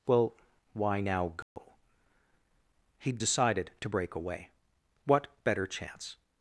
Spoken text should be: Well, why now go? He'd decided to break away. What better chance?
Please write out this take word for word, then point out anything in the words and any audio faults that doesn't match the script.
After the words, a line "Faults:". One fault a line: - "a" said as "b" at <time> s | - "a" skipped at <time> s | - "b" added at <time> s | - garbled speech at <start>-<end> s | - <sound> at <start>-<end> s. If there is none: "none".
Well, why now go? He'd decided to break away. What better chance?
Faults:
- dropout at 1.4-1.6 s